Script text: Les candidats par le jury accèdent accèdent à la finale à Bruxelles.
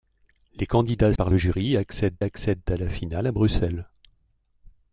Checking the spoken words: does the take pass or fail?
pass